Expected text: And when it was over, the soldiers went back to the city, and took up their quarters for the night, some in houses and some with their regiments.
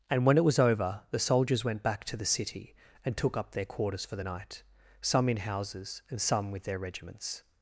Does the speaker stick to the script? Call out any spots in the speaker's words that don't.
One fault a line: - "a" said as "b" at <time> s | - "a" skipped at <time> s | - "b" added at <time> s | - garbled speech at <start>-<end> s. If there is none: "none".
none